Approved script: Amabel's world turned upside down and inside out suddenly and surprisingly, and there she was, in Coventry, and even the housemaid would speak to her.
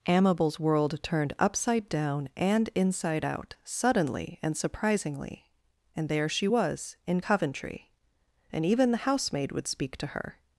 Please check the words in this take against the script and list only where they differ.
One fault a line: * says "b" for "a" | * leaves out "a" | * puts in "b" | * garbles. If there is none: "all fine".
all fine